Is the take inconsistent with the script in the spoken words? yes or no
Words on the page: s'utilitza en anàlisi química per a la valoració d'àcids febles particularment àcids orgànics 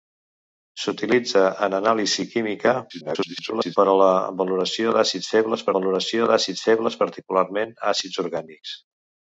yes